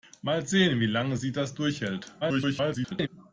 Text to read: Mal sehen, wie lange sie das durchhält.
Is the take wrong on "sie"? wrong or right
right